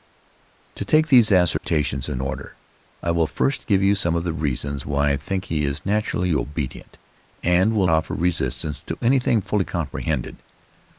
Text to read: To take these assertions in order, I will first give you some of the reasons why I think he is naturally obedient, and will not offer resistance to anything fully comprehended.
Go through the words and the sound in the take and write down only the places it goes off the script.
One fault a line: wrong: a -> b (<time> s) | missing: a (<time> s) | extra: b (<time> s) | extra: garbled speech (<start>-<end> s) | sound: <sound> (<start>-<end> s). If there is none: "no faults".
sound: dropout (1.6-1.6 s)
missing: not (7.9 s)